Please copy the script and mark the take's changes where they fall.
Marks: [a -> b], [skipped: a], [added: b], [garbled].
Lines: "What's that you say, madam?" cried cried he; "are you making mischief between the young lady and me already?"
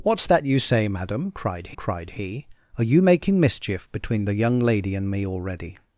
"What's that you say, madam?" cried cried he; "are you making mischief between the young lady and me already?"